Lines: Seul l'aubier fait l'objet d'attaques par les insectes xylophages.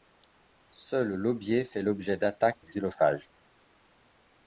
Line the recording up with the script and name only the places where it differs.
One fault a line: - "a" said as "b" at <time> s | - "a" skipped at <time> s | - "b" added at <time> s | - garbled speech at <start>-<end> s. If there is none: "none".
- "par les insectes" skipped at 2.6 s